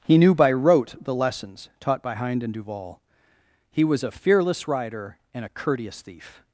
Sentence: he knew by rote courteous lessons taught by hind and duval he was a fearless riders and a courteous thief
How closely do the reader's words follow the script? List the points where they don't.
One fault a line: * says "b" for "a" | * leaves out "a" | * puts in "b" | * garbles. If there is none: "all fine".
* says "the" for "courteous"
* says "rider" for "riders"